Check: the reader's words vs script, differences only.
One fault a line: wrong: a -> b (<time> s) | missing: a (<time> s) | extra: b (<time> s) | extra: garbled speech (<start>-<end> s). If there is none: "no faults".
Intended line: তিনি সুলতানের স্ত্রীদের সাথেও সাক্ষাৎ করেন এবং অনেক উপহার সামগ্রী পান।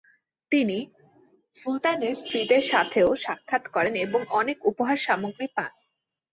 no faults